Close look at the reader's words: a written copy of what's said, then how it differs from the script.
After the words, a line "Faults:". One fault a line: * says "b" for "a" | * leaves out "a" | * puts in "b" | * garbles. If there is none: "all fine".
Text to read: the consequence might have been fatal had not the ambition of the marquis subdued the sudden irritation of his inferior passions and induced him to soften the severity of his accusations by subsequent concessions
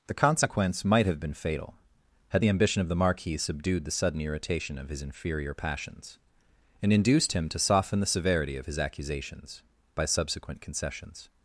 the consequence might have been fatal had the ambition of the marquis subdued the sudden irritation of his inferior passions and induced him to soften the severity of his accusations by subsequent concessions
Faults:
* leaves out "not"